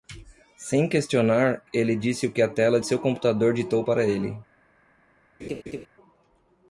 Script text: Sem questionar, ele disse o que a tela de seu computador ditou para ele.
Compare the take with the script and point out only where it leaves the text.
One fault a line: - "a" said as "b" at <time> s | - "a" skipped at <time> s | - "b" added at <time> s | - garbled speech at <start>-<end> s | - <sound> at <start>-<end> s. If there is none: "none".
- laugh at 5.4-5.9 s